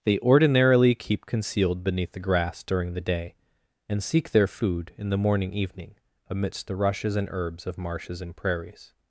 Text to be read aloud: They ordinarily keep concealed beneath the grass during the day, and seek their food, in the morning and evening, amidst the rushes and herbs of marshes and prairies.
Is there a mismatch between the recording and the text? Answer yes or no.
yes